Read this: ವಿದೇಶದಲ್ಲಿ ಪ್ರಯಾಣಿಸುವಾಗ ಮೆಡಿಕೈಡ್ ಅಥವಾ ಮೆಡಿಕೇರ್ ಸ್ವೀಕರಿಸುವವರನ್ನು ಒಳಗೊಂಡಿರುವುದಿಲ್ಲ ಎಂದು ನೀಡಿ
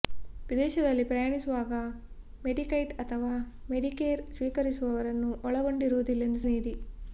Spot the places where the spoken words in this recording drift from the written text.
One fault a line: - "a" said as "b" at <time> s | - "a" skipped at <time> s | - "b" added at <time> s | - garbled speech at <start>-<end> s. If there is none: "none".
none